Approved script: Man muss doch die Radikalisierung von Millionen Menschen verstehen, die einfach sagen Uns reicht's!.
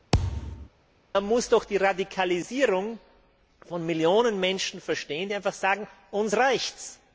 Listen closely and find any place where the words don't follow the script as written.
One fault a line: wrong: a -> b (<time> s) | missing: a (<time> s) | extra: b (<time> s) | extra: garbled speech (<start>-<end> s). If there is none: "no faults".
no faults